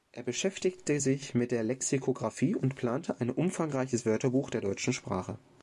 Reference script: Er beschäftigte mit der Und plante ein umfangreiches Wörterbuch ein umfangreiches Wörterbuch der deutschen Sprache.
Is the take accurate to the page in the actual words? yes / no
no